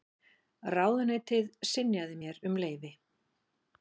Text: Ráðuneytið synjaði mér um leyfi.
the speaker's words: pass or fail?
pass